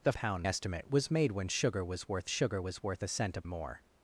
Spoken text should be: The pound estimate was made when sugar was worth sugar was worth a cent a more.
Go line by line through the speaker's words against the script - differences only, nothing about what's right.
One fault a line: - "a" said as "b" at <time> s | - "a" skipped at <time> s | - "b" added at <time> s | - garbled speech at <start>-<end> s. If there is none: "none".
none